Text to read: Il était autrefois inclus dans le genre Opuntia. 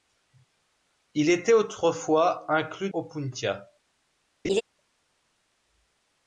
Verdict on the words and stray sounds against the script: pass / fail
fail